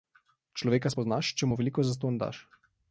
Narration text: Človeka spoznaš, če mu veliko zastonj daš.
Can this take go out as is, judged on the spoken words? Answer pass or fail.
pass